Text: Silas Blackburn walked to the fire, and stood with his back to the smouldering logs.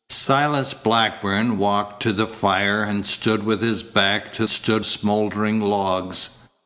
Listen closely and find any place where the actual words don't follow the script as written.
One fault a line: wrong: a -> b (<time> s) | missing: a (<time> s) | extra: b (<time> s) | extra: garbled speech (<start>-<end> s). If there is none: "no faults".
wrong: the -> stood (4.5 s)